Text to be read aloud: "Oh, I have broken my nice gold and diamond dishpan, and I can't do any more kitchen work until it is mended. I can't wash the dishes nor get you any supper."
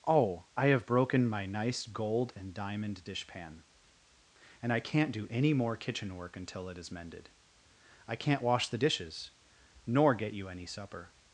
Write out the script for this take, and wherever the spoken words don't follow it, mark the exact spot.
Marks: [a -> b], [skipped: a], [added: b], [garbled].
"Oh, I have broken my nice gold and diamond dishpan, and I can't do any more kitchen work until it is mended. I can't wash the dishes nor get you any supper."